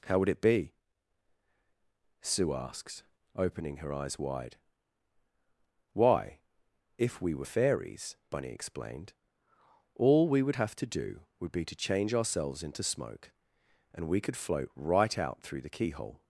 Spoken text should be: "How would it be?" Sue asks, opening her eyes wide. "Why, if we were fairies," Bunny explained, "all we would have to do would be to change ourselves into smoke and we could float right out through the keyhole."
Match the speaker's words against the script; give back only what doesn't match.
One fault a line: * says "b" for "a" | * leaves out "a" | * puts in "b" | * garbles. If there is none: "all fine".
all fine